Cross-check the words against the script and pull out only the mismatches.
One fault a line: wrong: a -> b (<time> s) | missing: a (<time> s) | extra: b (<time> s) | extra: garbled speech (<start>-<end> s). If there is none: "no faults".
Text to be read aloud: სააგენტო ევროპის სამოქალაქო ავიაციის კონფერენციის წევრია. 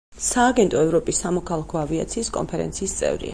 no faults